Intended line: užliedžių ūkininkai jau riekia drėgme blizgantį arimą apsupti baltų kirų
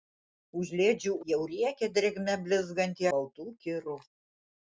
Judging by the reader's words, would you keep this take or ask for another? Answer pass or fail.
fail